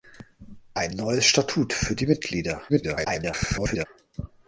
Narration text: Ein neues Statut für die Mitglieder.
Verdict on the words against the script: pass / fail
fail